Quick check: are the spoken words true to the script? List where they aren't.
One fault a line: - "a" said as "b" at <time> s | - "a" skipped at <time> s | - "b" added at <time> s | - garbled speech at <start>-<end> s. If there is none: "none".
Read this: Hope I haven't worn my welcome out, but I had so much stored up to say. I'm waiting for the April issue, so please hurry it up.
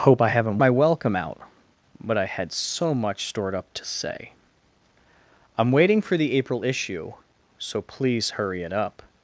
- "worn" skipped at 0.6 s